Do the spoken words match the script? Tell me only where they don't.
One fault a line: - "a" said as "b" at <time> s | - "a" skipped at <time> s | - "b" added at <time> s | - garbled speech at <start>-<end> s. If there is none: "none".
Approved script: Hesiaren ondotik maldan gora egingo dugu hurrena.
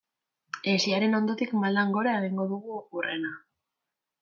none